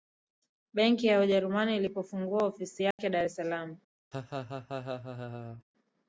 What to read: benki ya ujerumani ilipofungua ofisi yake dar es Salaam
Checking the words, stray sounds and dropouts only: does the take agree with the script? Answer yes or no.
no